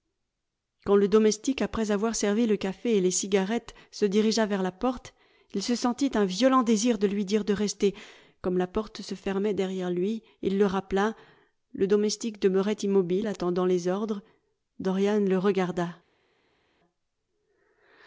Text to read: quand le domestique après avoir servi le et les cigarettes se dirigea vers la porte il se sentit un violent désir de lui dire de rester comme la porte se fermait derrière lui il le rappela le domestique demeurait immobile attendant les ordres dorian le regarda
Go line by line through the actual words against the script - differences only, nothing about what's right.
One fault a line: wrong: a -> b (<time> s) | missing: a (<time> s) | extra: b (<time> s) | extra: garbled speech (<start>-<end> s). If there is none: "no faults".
extra: café (2.6 s)